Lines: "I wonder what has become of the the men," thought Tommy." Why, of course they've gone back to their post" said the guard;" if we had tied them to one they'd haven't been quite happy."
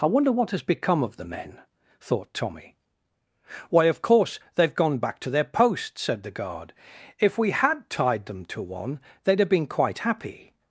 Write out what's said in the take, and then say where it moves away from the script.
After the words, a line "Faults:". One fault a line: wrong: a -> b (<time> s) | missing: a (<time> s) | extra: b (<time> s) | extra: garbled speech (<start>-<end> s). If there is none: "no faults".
"I wonder what has become of the men," thought Tommy." Why, of course they've gone back to their post" said the guard;" if we had tied them to one they'd have been quite happy."
Faults:
missing: the (1.3 s)
wrong: haven't -> have (9.4 s)